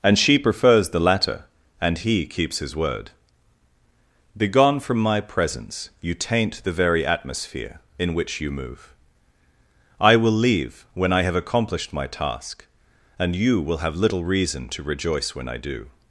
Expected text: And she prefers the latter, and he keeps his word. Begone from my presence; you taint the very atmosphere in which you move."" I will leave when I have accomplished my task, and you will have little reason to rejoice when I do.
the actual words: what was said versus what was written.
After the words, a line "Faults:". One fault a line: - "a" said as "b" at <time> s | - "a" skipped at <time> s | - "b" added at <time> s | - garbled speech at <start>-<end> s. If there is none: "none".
And she prefers the latter, and he keeps his word. Begone from my presence; you taint the very atmosphere in which you move."" I will leave when I have accomplished my task, and you will have little reason to rejoice when I do.
Faults:
none